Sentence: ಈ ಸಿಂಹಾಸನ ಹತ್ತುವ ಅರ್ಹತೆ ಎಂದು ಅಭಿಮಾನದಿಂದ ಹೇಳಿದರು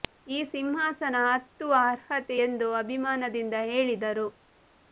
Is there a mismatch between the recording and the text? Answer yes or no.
no